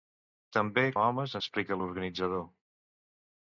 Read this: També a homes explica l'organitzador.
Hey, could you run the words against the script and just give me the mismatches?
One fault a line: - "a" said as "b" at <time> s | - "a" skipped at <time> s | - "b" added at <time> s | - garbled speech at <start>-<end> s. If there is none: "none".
none